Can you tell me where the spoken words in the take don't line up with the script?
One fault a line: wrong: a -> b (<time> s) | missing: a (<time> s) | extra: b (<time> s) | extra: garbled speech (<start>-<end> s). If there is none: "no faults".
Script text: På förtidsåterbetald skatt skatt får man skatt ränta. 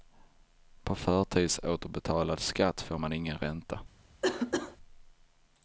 missing: skatt (2.8 s)
wrong: skatt -> ingen (3.1 s)